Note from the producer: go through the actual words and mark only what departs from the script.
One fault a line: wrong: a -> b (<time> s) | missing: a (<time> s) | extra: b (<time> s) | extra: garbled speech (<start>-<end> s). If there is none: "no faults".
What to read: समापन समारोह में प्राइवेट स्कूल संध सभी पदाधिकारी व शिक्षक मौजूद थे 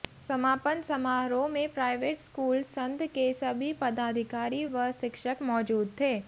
extra: के (3.1 s)